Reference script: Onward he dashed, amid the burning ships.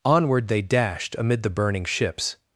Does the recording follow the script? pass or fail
fail